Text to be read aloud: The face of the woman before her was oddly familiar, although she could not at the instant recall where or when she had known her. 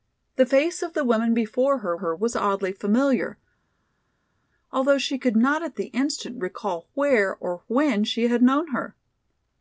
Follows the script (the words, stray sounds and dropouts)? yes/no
no